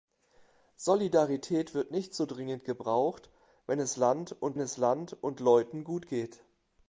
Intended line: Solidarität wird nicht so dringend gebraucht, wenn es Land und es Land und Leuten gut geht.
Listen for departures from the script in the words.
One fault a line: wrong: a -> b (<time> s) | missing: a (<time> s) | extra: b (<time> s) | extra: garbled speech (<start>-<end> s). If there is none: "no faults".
no faults